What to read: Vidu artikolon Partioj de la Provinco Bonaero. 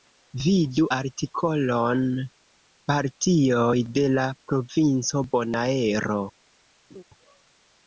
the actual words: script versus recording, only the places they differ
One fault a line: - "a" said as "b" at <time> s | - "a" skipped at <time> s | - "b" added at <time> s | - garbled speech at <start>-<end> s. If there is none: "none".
none